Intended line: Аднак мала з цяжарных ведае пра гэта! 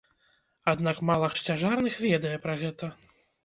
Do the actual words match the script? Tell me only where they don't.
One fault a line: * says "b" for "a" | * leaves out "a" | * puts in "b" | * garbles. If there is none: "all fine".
all fine